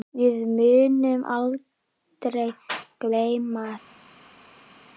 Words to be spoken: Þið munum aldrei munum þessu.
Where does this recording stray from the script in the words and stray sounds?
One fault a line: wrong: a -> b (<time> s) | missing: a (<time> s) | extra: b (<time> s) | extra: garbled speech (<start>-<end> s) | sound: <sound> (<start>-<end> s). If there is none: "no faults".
wrong: Þið -> Við (0.2 s)
wrong: munum -> gleyma (3.0 s)